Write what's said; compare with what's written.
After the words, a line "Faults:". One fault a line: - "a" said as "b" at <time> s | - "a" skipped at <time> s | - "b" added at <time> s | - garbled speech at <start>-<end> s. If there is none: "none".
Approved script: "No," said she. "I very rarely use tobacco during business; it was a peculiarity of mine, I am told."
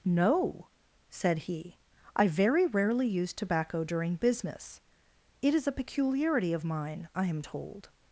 "No," said he. "I very rarely use tobacco during business; it is a peculiarity of mine, I am told."
Faults:
- "she" said as "he" at 1.4 s
- "was" said as "is" at 5.5 s